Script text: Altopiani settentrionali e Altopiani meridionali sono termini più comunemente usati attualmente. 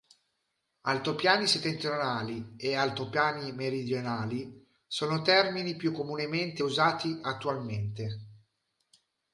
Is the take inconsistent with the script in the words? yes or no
no